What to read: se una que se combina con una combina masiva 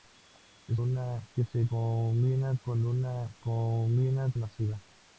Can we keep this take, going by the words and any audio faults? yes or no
yes